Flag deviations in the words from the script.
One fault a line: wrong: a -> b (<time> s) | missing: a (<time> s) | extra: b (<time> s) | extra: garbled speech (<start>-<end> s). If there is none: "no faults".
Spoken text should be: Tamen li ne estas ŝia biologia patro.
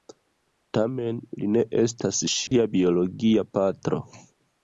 no faults